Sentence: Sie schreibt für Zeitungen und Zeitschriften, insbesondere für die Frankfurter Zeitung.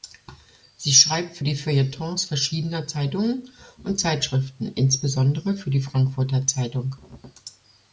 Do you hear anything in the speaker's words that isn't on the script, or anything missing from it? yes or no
yes